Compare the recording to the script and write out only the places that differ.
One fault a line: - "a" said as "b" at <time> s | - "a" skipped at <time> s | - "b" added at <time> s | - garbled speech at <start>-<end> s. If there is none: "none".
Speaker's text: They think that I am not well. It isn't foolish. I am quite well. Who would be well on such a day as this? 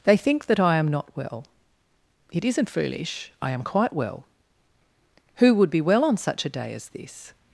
none